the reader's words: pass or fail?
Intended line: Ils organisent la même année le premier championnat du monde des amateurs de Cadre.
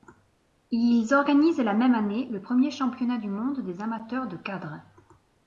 pass